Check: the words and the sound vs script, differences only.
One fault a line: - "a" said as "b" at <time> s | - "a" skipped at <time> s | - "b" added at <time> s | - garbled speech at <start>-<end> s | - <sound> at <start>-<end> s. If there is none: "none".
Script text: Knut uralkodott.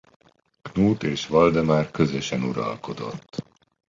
- "és Valdemár közösen" added at 1.0 s